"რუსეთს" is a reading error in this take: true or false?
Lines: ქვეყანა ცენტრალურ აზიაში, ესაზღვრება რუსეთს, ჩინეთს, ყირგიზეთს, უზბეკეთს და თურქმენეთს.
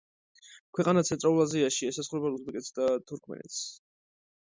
true